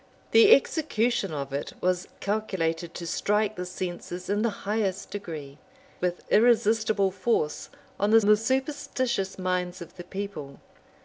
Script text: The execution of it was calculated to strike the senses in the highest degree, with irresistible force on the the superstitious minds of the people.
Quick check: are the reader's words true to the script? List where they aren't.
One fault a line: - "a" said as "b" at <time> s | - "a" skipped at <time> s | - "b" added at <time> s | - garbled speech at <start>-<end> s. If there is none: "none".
none